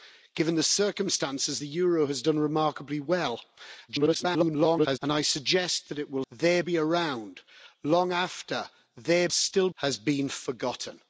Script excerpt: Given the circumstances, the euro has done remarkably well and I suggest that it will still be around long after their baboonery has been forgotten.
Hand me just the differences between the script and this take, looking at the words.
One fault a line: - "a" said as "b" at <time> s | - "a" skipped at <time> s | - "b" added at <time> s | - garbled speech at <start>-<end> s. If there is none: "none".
- garbled speech at 3.9-5.0 s
- "still" said as "their" at 6.3 s
- "baboonery" said as "still" at 9.3 s